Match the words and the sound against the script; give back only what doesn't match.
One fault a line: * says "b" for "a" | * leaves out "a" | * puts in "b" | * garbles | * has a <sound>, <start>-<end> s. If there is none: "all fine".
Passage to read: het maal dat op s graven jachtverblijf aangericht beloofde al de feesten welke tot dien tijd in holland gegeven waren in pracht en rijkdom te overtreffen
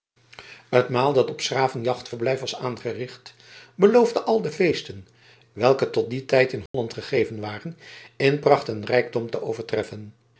* puts in "was"
* has a dropout, 6.7-6.7 s